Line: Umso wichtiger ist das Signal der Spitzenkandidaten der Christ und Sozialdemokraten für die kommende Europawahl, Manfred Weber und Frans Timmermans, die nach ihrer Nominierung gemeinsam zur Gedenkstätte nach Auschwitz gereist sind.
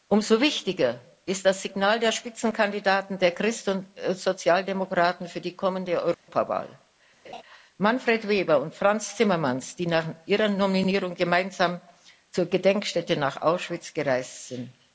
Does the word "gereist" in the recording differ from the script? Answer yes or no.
no